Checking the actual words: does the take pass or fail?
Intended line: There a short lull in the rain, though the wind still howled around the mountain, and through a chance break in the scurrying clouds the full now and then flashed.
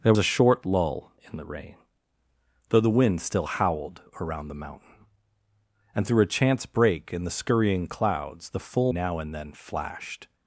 pass